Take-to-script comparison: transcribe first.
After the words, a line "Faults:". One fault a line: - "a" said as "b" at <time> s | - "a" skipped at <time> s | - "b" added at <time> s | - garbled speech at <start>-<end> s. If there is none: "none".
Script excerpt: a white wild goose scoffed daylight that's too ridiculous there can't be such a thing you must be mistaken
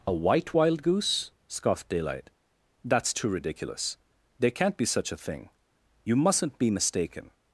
a white wild goose scoffed daylight that's too ridiculous there can't be such a thing you mustn't be mistaken
Faults:
- "must" said as "mustn't" at 6.2 s